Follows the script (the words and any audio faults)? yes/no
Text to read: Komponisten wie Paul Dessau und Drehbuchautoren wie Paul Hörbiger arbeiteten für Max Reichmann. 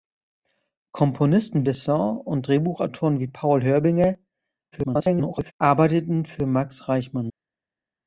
no